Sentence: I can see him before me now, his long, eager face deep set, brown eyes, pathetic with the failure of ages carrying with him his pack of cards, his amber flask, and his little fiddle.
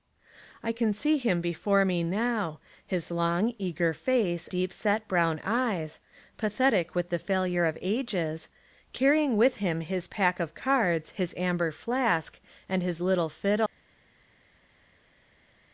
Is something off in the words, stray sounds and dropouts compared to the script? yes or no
no